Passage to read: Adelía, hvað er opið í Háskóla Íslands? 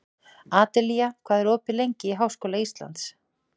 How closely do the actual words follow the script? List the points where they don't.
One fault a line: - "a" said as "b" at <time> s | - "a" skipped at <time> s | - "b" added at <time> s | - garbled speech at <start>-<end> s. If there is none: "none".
- "lengi" added at 1.8 s